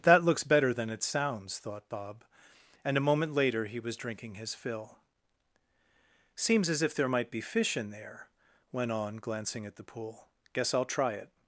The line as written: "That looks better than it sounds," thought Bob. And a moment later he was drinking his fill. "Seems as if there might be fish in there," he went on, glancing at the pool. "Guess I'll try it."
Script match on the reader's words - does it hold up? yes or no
no